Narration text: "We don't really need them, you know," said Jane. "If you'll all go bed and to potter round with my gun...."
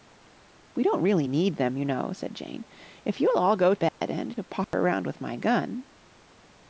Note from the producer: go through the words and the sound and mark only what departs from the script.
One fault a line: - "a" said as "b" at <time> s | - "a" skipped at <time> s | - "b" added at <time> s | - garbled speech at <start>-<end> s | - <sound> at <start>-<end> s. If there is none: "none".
- dropout at 3.9-4.0 s
- dropout at 4.6-4.7 s